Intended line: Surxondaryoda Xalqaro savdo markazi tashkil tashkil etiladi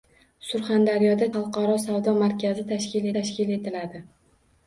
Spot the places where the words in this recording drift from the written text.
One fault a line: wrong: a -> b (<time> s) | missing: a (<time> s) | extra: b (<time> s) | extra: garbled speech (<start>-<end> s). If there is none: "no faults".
no faults